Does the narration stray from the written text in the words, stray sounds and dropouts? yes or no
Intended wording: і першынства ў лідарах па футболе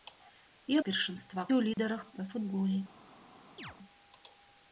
yes